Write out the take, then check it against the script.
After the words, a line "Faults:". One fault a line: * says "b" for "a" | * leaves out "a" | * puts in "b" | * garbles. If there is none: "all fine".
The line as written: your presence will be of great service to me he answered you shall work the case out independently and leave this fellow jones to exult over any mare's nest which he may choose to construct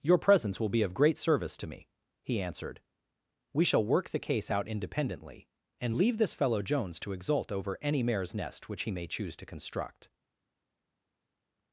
your presence will be of great service to me he answered we shall work the case out independently and leave this fellow jones to exult over any mare's nest which he may choose to construct
Faults:
* says "we" for "you"